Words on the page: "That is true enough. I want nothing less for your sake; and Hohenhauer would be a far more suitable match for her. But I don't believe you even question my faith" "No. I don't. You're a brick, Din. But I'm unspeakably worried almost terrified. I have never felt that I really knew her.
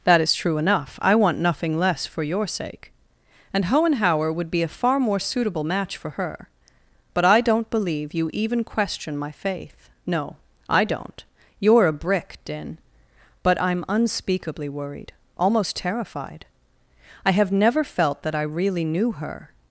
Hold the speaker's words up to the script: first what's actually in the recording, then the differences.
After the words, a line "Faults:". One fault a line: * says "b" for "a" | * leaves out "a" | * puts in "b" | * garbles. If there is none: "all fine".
"That is true enough. I want nothing less for your sake; and Hohenhauer would be a far more suitable match for her. But I don't believe you even question my faith" "No. I don't. You're a brick, Din. But I'm unspeakably worried almost terrified. I have never felt that I really knew her.
Faults:
all fine